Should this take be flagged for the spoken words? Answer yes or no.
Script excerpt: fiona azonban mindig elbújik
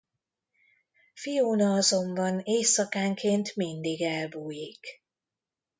yes